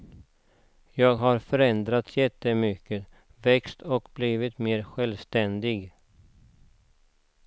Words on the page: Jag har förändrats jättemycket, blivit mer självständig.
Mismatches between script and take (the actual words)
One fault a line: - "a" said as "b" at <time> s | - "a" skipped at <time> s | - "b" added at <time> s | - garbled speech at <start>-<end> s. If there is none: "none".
- "växt och" added at 3.4 s